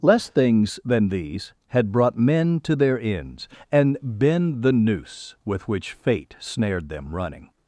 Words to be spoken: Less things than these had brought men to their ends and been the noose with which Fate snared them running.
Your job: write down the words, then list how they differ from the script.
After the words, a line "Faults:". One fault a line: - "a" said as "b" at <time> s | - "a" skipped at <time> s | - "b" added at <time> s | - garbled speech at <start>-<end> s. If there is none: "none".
Less things than these had brought men to their ends and been the noose with which Fate snared them running.
Faults:
none